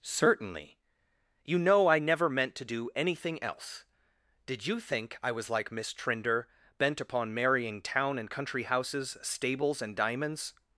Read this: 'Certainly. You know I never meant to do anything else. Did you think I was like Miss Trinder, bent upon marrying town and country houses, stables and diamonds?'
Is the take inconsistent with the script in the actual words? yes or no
no